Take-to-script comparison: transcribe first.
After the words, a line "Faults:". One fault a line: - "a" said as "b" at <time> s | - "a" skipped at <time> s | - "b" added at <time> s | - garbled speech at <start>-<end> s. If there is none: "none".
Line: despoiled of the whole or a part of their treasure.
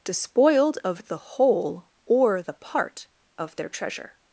despoiled of the whole or the part of their treasure.
Faults:
- "a" said as "the" at 2.4 s